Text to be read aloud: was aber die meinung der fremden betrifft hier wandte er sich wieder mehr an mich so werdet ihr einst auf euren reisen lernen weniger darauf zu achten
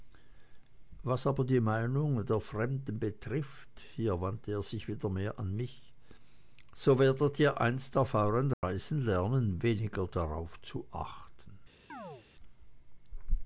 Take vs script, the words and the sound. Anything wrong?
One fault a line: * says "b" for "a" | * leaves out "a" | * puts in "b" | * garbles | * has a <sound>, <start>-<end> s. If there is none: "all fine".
* has a dropout, 8.5-8.6 s
* has a chirp, 11.9-12.3 s